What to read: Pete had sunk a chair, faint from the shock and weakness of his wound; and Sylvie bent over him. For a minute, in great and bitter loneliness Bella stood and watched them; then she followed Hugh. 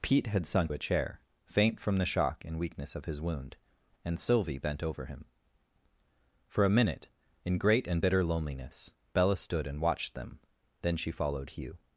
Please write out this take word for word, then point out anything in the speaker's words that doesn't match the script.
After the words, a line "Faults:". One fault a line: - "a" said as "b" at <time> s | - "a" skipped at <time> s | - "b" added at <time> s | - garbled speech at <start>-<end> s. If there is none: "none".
Pete had sunk a chair, faint from the shock and weakness of his wound; and Sylvie bent over him. For a minute, in great and bitter loneliness Bella stood and watched them; then she followed Hugh.
Faults:
none